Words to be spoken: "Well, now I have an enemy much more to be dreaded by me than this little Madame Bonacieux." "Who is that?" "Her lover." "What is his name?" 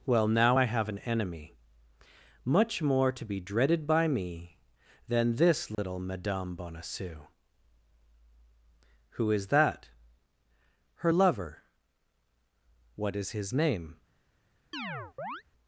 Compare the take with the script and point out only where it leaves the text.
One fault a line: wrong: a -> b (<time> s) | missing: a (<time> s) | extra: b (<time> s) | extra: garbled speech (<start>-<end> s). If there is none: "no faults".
no faults